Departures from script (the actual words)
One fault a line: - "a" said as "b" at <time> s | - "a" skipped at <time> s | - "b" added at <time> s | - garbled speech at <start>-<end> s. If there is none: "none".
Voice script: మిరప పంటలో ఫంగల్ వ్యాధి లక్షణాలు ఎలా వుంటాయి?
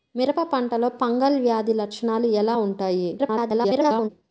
- garbled speech at 3.2-4.1 s